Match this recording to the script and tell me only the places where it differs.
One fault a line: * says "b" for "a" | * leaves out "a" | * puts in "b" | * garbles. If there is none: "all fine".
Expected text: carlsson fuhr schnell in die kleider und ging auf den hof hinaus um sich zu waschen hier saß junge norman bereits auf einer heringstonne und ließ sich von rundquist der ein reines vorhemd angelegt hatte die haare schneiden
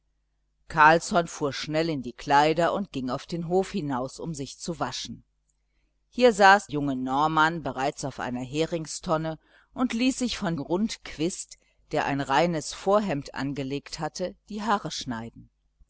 all fine